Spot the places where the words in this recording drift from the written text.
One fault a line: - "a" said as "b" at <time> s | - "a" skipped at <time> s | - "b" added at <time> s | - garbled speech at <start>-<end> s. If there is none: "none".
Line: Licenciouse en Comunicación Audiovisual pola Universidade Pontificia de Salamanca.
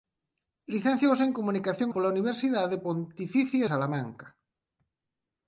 - "Audiovisual" skipped at 1.9 s
- "de" skipped at 3.6 s